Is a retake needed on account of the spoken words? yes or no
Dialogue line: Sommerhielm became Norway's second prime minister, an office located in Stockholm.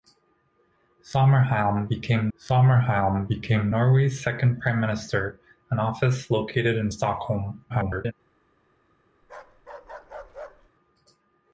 yes